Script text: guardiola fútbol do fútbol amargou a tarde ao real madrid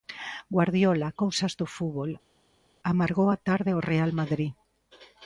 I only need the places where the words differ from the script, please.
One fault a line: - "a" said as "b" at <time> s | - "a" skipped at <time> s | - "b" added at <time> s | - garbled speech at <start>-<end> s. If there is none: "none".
- "fútbol" said as "cousas" at 1.2 s